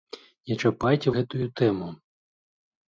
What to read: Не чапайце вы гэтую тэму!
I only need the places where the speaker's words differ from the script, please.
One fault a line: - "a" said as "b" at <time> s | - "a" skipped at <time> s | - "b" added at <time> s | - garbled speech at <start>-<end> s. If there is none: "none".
- "вы" skipped at 1.1 s